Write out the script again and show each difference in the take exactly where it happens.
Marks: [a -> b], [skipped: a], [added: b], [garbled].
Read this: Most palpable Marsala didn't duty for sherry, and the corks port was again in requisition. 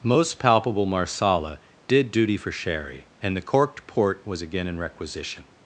Most palpable Marsala [didn't -> did] duty for sherry, and the [corks -> corked] port was again in requisition.